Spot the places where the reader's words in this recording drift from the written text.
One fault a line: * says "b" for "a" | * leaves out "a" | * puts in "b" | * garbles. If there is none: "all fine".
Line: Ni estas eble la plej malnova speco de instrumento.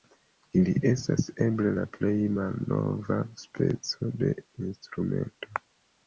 * says "Ili" for "Ni"